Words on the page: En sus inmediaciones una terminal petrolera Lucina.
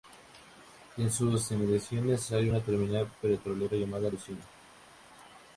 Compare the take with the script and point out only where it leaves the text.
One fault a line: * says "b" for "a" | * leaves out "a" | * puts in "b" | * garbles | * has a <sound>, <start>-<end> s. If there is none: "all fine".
* puts in "hay"
* puts in "llamada"